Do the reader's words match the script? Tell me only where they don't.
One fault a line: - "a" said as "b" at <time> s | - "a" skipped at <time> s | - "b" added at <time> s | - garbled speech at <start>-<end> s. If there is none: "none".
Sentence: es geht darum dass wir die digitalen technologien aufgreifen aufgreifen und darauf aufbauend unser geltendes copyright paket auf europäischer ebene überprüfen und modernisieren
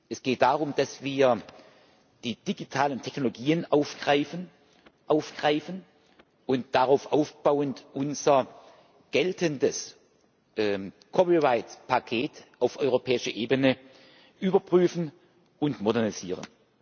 none